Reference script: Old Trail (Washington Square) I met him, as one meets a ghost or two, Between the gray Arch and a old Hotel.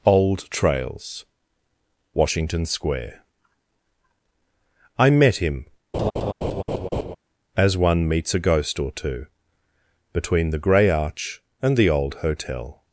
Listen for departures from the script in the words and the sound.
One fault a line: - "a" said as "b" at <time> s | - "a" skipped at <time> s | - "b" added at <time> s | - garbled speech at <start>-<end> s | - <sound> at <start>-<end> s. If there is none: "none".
- "Trail" said as "Trails" at 0.5 s
- laugh at 5.9-7.2 s
- "a" said as "the" at 11.8 s